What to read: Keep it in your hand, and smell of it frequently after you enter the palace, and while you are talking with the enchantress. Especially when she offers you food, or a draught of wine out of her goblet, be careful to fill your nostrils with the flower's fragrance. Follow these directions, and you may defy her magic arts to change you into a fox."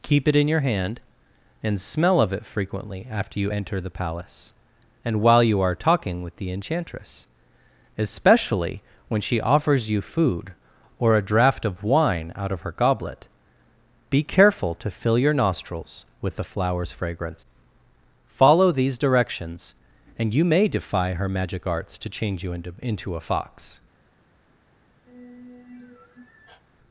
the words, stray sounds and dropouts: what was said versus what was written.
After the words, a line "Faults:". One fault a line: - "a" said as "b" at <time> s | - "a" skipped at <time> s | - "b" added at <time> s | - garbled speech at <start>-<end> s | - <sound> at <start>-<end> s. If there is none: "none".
Keep it in your hand, and smell of it frequently after you enter the palace, and while you are talking with the enchantress. Especially when she offers you food, or a draught of wine out of her goblet, be careful to fill your nostrils with the flower's fragrance. Follow these directions, and you may defy her magic arts to change you into into a fox."
Faults:
- "into" added at 22.8 s
- sigh at 25.1-26.6 s